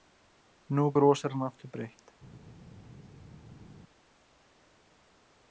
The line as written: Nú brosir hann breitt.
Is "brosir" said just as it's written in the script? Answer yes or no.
yes